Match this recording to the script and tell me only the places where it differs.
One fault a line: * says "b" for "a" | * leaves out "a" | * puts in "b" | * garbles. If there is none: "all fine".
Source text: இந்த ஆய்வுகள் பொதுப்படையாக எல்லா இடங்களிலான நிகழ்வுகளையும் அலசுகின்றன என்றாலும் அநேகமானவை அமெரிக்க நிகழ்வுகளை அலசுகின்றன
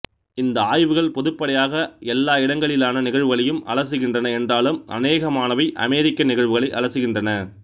all fine